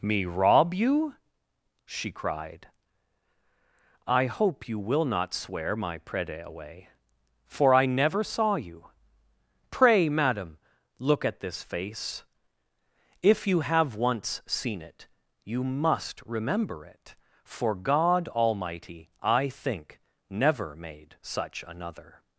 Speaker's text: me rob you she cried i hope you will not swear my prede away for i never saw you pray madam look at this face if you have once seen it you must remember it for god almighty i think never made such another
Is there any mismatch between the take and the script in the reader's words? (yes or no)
no